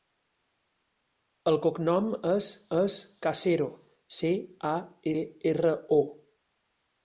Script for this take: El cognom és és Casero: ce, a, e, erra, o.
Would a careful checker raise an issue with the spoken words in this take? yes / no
no